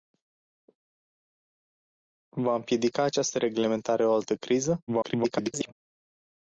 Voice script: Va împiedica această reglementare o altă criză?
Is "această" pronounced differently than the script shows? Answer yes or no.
no